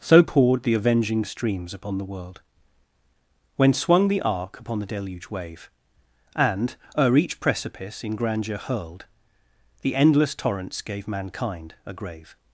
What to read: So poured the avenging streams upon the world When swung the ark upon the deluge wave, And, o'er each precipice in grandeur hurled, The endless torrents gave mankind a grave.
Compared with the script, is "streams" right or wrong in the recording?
right